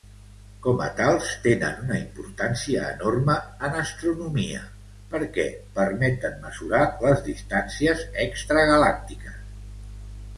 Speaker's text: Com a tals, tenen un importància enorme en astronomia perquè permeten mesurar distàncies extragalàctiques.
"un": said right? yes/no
no